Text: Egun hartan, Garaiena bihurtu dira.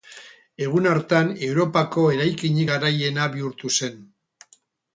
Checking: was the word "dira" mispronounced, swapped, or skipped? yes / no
yes